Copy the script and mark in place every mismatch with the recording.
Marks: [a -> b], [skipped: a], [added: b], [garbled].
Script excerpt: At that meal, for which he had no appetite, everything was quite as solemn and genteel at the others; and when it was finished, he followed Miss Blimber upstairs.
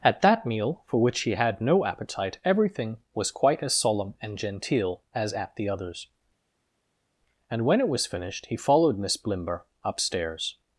At that meal, for which he had no appetite, everything was quite as solemn and genteel [added: as] at the others; and when it was finished, he followed Miss Blimber upstairs.